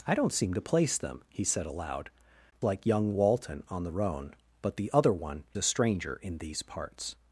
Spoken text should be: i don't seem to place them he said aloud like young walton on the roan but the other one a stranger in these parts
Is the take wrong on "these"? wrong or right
right